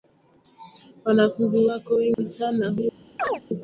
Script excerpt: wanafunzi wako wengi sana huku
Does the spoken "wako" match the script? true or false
true